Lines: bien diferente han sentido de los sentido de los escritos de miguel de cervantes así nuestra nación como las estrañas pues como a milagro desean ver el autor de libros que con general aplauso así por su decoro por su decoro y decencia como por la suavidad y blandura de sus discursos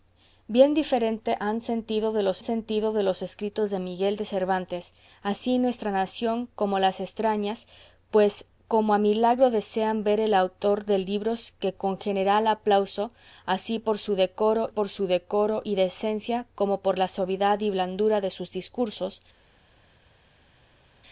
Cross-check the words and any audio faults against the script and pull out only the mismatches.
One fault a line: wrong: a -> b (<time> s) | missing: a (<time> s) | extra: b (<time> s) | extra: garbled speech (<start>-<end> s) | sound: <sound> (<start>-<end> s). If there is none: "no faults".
no faults